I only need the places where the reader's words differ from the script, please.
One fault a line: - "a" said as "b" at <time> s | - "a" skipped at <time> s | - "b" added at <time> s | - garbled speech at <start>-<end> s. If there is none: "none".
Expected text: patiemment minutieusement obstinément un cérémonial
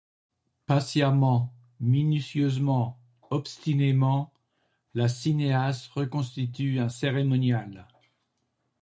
- "la cinéaste reconstitue" added at 5.0 s